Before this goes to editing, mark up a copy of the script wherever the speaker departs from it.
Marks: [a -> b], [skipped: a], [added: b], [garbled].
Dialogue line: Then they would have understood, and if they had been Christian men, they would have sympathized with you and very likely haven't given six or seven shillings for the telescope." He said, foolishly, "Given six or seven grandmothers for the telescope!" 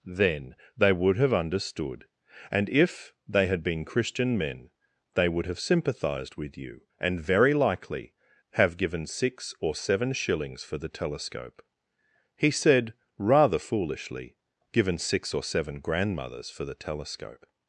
Then they would have understood, and if they had been Christian men, they would have sympathized with you and very likely [haven't -> have] given six or seven shillings for the telescope." He said, [added: rather] foolishly, "Given six or seven grandmothers for the telescope!"